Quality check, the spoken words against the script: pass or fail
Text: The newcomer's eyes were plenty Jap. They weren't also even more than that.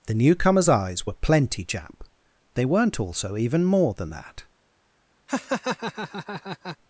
pass